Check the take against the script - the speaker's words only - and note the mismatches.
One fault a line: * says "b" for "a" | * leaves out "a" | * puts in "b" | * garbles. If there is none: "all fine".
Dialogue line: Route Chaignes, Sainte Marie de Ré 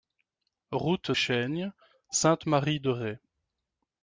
all fine